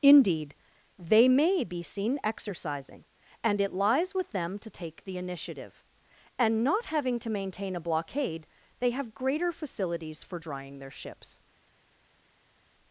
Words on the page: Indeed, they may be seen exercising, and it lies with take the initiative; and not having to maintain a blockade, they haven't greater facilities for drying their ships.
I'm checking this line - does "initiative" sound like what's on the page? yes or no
yes